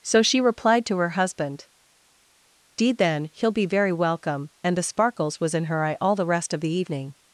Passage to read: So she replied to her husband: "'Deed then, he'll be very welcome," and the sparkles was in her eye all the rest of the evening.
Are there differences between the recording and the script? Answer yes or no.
no